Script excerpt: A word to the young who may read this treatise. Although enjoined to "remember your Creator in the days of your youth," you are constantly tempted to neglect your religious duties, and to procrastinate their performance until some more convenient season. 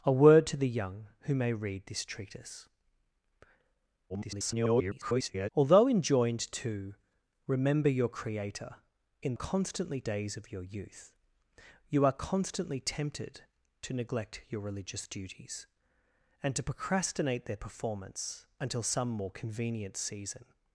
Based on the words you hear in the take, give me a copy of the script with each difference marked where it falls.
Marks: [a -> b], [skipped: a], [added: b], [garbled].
A word to the young who may read this treatise. [garbled] Although enjoined to "remember your Creator in [the -> constantly] days of your youth," you are constantly tempted to neglect your religious duties, and to procrastinate their performance until some more convenient season.